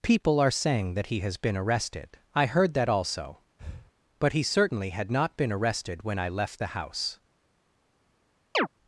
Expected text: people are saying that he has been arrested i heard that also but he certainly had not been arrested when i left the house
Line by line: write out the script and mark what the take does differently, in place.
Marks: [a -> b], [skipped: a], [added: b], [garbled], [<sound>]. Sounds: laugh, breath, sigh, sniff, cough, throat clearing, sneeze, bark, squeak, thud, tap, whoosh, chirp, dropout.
people are saying that he has been arrested i heard that also [breath] but he certainly had not been arrested when i left the house [chirp]